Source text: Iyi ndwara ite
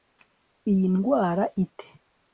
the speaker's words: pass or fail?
pass